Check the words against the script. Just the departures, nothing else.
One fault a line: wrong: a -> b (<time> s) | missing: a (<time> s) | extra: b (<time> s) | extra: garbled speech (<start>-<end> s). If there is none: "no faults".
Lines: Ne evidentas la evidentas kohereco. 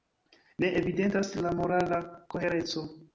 wrong: evidentas -> morala (1.6 s)